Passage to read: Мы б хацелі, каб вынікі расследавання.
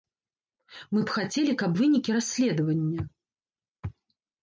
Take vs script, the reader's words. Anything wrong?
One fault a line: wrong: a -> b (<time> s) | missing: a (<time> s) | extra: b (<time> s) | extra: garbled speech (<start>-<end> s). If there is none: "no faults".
no faults